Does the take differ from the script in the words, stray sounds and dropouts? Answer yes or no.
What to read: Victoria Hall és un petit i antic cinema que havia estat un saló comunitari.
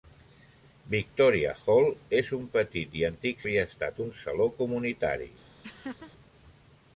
yes